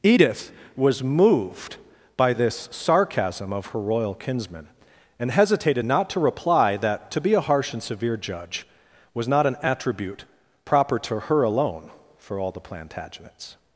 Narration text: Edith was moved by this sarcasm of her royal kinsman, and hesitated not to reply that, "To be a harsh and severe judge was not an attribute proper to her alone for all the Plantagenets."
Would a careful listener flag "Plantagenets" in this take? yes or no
no